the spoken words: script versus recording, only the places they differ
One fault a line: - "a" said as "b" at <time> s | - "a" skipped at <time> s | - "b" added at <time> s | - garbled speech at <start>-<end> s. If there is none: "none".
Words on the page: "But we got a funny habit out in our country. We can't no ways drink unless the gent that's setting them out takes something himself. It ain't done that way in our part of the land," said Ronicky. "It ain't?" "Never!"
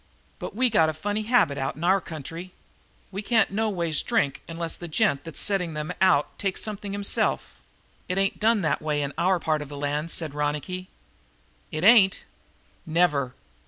none